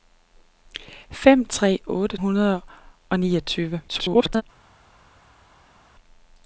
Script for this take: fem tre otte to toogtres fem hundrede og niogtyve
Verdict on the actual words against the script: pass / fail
fail